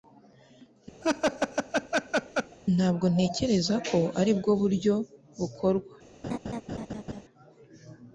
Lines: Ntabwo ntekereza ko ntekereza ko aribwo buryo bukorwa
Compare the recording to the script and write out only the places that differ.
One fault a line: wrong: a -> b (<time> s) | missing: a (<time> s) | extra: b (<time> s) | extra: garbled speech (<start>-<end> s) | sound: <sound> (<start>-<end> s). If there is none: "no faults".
sound: laugh (1.0-2.6 s)
missing: ntekereza ko (4.0 s)
sound: laugh (6.2-7.2 s)